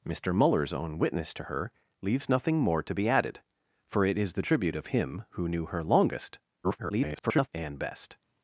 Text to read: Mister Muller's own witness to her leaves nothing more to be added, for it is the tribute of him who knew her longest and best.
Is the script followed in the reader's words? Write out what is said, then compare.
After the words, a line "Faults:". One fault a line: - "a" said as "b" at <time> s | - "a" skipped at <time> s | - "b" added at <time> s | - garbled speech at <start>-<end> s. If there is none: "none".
Mister Muller's own witness to her leaves nothing more to be added, for it is the tribute of him who knew her longest [garbled] and best.
Faults:
- garbled speech at 6.6-7.5 s